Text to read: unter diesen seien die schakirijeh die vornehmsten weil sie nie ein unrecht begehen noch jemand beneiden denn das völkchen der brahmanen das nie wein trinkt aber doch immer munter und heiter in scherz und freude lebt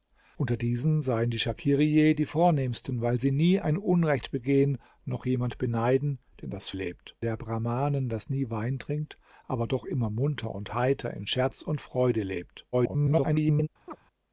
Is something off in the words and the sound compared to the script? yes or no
yes